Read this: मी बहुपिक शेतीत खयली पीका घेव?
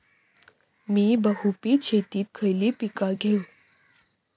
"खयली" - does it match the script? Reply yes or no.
yes